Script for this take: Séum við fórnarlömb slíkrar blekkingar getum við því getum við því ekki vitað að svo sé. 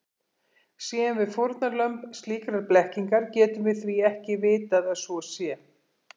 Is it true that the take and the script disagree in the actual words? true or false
true